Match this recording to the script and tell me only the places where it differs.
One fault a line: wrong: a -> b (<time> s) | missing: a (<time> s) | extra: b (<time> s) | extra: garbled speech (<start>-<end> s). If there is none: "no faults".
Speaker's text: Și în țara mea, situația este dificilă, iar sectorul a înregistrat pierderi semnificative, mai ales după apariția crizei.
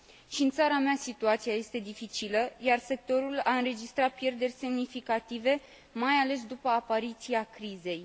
no faults